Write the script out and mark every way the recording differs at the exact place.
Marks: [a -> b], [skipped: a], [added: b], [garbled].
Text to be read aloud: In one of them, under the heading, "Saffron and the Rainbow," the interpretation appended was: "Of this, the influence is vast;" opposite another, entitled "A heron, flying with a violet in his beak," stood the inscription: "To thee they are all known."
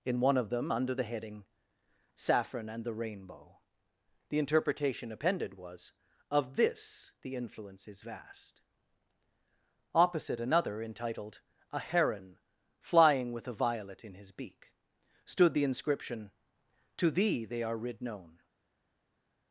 In one of them, under the heading, "Saffron and the Rainbow," the interpretation appended was: "Of this, the influence is vast;" opposite another, entitled "A heron, flying with a violet in his beak," stood the inscription: "To thee they are [all -> rid] known."